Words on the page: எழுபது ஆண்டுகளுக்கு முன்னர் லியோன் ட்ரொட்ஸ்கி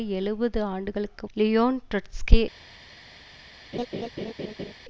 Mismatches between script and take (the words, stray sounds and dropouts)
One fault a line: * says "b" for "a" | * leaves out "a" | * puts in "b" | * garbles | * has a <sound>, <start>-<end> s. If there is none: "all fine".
* leaves out "முன்னர்"
* has a laugh, 3.7-4.7 s